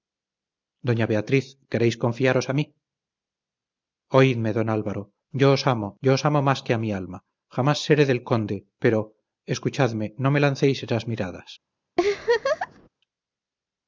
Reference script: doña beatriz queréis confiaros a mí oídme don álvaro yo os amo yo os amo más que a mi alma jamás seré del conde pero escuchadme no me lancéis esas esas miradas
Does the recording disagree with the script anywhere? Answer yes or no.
yes